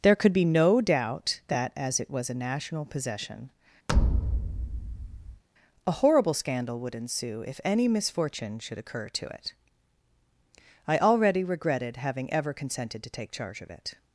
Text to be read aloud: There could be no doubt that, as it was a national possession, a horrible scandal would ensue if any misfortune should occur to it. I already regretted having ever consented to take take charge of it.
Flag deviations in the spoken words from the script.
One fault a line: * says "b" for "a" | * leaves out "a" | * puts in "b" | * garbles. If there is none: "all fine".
* leaves out "take"